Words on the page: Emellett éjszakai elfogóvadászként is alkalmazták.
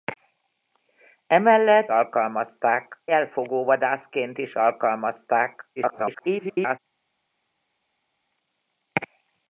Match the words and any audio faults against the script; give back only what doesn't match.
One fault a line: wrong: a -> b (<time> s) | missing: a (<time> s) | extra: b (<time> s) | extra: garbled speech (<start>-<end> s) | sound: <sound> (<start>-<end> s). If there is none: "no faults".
wrong: éjszakai -> alkalmazták (1.9 s)
extra: garbled speech (5.8-6.8 s)